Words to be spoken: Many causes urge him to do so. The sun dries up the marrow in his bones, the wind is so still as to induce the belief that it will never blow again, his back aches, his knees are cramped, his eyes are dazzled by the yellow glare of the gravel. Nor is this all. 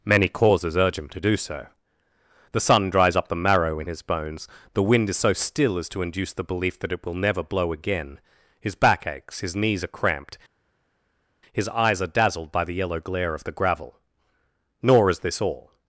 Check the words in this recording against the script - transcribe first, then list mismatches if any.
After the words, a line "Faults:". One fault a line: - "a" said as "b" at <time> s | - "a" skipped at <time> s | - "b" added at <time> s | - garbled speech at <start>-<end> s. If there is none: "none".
Many causes urge him to do so. The sun dries up the marrow in his bones, the wind is so still as to induce the belief that it will never blow again, his back aches, his knees are cramped, his eyes are dazzled by the yellow glare of the gravel. Nor is this all.
Faults:
none